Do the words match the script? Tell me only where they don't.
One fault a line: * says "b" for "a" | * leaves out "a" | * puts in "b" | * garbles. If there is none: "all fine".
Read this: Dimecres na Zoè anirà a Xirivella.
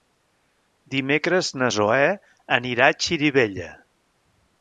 all fine